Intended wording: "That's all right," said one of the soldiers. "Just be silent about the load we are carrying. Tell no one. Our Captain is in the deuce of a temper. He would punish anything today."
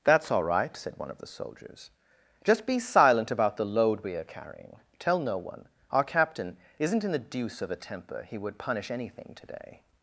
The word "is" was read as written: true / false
false